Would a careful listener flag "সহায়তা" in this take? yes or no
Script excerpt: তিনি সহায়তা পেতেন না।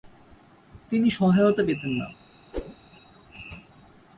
no